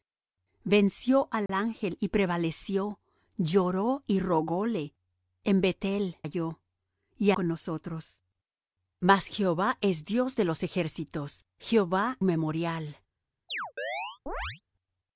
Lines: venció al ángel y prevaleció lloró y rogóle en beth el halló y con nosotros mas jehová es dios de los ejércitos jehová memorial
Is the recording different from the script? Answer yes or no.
no